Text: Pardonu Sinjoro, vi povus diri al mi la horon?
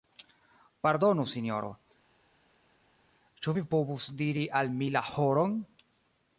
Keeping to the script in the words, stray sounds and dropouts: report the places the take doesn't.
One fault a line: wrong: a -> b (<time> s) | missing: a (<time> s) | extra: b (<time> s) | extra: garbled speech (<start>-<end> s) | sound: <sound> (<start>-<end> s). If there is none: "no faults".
extra: ĉu (3.5 s)